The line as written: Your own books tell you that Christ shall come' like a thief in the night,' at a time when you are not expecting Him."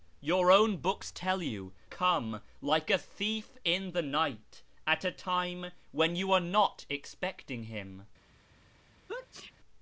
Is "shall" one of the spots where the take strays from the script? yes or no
yes